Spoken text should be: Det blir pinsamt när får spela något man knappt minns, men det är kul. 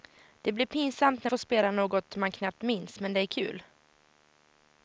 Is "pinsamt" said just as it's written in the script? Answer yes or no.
yes